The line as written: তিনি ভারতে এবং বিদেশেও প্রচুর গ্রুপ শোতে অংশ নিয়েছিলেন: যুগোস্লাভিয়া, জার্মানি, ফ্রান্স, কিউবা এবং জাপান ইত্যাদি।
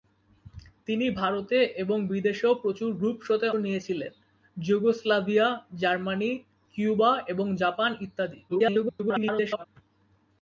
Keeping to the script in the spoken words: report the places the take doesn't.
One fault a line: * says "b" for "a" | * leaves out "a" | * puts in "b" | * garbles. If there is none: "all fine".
* leaves out "অংশ"
* leaves out "ফ্রান্স"
* garbles